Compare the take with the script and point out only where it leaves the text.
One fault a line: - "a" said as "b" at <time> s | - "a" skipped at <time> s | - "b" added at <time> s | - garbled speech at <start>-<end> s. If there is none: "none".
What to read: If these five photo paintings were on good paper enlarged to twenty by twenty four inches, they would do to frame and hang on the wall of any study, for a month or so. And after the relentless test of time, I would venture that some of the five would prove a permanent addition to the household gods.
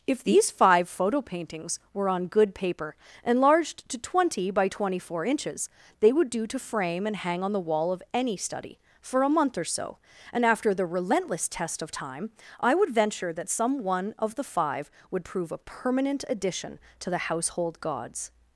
- "one" added at 13.8 s